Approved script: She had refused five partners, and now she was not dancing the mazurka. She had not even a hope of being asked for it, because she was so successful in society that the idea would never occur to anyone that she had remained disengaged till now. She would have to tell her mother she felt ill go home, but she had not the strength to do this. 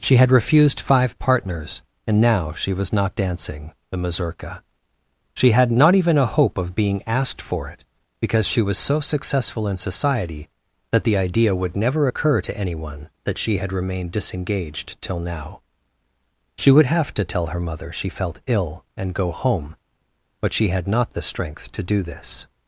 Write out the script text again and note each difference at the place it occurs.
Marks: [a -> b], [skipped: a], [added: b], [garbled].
She had refused five partners, and now she was not dancing the mazurka. She had not even a hope of being asked for it, because she was so successful in society that the idea would never occur to anyone that she had remained disengaged till now. She would have to tell her mother she felt ill [added: and] go home, but she had not the strength to do this.